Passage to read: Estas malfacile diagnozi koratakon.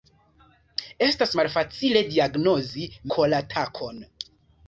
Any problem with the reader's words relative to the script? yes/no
no